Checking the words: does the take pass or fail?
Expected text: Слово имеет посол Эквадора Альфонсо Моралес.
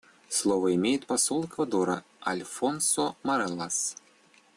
pass